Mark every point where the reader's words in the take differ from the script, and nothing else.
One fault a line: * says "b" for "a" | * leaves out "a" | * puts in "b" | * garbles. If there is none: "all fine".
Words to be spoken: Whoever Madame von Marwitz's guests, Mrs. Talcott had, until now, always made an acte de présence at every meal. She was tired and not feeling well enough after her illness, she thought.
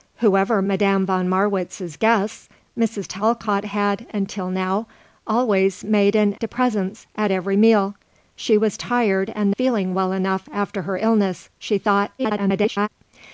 * leaves out "acte"
* leaves out "not"
* garbles